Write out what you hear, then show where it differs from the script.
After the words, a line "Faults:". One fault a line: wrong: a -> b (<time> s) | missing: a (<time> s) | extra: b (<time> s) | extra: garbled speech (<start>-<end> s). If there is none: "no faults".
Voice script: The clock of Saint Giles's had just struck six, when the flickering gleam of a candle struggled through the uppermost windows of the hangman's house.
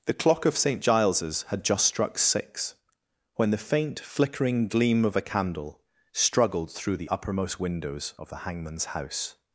The clock of Saint Giles's had just struck six, when the faint, flickering gleam of a candle struggled through the uppermost windows of the hangman's house.
Faults:
extra: faint (3.7 s)